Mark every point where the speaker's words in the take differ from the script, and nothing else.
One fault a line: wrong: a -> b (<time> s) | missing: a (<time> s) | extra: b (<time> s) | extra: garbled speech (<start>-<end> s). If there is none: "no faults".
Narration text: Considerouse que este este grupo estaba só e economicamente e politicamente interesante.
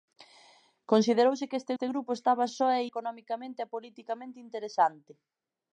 no faults